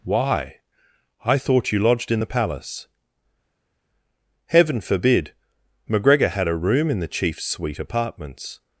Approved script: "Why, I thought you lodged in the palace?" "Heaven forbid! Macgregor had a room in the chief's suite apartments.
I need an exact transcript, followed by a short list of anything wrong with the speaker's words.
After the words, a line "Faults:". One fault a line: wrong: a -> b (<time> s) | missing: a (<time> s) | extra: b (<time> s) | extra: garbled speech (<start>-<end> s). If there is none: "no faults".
"Why, I thought you lodged in the palace?" "Heaven forbid! Macgregor had a room in the chief's suite apartments.
Faults:
no faults